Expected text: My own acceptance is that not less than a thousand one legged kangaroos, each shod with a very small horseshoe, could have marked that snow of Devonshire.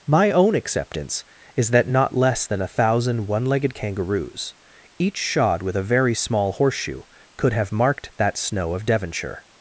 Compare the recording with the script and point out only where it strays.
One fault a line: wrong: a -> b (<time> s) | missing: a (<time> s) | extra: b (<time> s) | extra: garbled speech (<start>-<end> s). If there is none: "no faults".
no faults